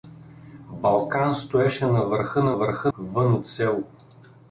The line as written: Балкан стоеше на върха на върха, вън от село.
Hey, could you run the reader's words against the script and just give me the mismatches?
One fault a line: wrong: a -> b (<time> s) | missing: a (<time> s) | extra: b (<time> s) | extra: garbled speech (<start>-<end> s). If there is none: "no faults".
no faults